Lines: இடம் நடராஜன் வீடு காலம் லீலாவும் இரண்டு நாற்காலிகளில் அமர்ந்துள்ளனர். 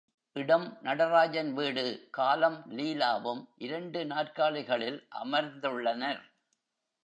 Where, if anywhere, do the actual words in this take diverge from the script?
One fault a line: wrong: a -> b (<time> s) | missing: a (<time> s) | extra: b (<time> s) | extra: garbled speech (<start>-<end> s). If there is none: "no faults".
no faults